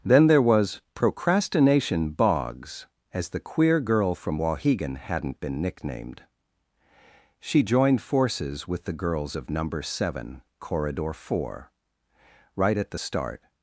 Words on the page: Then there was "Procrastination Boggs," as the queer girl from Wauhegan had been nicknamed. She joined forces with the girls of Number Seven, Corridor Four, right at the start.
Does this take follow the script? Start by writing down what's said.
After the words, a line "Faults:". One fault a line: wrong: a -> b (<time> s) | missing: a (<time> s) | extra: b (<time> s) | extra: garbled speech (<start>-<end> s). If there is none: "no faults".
Then there was "Procrastination Boggs," as the queer girl from Wauhegan hadn't been nicknamed. She joined forces with the girls of Number Seven, Corridor Four, right at the start.
Faults:
wrong: had -> hadn't (5.0 s)